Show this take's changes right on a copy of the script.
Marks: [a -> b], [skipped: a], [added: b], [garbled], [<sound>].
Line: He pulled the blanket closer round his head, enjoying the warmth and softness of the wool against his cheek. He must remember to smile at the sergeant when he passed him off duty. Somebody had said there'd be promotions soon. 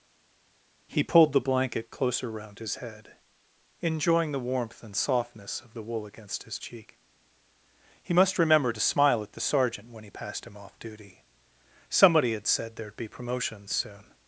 He pulled the blanket closer round his head, enjoying the warmth and softness of the wool against his cheek. He must remember to smile at the sergeant when he passed him off duty. Somebody had said there'd be promotions soon.